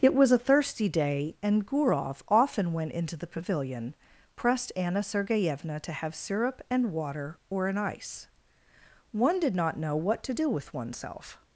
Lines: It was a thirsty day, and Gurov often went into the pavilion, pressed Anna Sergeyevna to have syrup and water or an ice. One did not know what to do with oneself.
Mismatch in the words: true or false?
false